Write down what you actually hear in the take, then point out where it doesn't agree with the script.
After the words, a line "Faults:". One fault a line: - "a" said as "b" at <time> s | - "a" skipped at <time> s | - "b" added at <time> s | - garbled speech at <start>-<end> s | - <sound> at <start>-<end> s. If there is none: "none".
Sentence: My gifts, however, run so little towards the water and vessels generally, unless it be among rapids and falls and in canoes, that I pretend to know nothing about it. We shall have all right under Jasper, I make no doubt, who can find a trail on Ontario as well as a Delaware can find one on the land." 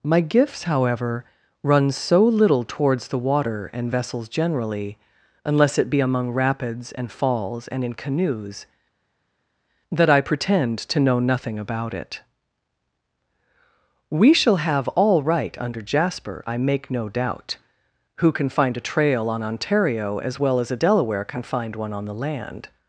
My gifts, however, run so little towards the water and vessels generally, unless it be among rapids and falls and in canoes, that I pretend to know nothing about it. We shall have all right under Jasper, I make no doubt, who can find a trail on Ontario as well as a Delaware can find one on the land."
Faults:
none